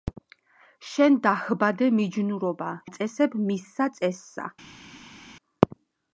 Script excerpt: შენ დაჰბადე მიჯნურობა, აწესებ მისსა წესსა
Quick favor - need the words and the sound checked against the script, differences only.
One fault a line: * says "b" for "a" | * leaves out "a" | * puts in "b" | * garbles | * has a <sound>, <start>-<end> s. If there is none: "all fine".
all fine